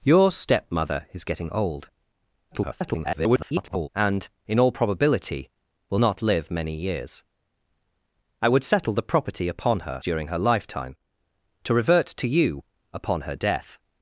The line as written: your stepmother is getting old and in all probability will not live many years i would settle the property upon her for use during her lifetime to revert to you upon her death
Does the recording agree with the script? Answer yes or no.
no